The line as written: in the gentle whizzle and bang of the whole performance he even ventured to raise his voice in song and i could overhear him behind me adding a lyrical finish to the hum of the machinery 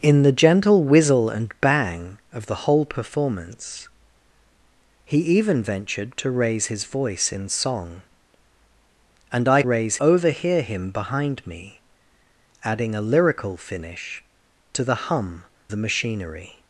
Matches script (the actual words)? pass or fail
fail